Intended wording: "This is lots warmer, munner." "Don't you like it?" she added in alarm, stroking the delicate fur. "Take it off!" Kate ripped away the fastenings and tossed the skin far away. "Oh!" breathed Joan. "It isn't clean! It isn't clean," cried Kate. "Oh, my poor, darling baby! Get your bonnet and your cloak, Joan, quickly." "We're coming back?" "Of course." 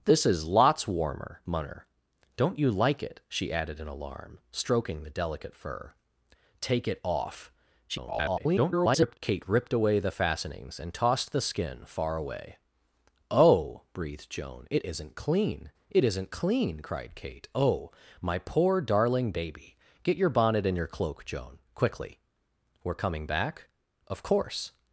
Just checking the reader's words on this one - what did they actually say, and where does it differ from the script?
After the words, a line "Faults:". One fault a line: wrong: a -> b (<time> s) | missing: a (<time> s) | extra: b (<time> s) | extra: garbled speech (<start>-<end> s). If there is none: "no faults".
"This is lots warmer, munner." "Don't you like it?" she added in alarm, stroking the delicate fur. "Take it off!" [garbled] Kate ripped away the fastenings and tossed the skin far away. "Oh!" breathed Joan. "It isn't clean! It isn't clean," cried Kate. "Oh, my poor, darling baby! Get your bonnet and your cloak, Joan, quickly." "We're coming back?" "Of course."
Faults:
extra: garbled speech (7.9-9.2 s)